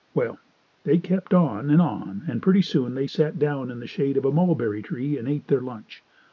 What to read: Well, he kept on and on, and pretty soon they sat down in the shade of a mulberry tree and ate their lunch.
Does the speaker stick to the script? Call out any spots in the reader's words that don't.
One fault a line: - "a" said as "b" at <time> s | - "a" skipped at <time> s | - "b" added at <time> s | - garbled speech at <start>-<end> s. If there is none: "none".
- "he" said as "they" at 0.8 s